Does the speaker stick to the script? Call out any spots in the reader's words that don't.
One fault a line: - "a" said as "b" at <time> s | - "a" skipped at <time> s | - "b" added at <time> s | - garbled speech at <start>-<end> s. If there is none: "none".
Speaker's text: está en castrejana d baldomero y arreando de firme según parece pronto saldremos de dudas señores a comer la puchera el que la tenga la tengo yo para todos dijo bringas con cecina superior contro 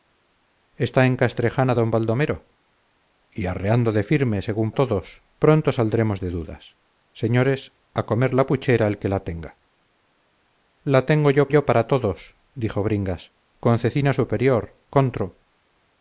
- "parece" said as "todos" at 4.7 s
- "yo" added at 11.5 s